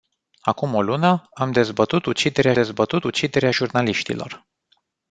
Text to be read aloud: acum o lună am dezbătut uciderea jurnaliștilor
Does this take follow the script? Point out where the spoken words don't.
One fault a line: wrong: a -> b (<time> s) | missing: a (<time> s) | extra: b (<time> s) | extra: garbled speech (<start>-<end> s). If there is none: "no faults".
extra: dezbătut uciderea (2.5 s)